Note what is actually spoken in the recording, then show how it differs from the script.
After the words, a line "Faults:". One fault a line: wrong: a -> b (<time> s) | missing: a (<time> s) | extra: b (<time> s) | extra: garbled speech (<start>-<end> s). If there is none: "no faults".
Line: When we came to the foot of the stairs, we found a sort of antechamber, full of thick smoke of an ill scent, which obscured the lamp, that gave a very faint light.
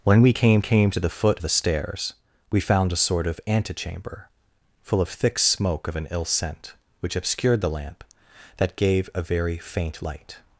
When we came came to the foot the stairs, we found a sort of antechamber, full of thick smoke of an ill scent, which obscured the lamp, that gave a very faint light.
Faults:
extra: came (0.6 s)
missing: of (1.4 s)